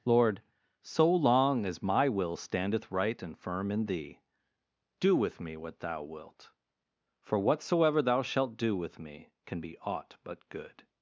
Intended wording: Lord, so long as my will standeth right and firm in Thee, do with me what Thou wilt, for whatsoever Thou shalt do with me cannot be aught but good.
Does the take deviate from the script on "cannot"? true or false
true